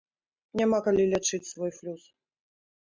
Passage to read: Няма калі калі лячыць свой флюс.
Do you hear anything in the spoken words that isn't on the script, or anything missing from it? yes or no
yes